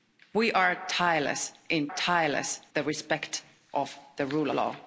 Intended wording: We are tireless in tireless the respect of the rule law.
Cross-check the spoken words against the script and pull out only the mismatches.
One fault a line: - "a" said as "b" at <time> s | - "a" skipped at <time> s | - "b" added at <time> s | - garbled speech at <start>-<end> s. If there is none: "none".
none